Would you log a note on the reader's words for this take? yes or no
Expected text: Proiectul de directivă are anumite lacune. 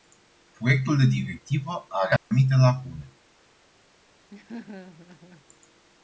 no